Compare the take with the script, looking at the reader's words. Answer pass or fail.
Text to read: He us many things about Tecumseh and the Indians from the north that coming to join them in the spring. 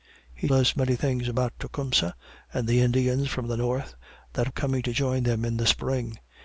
pass